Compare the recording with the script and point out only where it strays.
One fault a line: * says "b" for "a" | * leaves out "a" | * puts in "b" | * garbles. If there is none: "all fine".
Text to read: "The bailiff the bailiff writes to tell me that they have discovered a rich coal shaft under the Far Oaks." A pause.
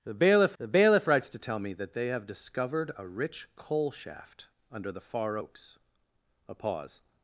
all fine